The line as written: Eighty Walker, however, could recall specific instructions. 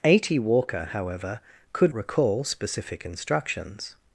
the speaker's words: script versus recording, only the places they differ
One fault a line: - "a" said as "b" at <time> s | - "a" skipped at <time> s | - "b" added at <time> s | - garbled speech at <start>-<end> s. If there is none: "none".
none